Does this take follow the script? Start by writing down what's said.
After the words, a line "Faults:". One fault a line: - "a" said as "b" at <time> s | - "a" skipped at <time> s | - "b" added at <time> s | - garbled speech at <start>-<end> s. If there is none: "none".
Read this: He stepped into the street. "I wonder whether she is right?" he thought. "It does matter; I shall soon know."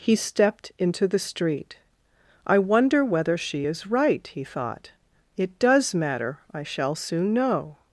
He stepped into the street. "I wonder whether she is right?" he thought. "It does matter; I shall soon know."
Faults:
none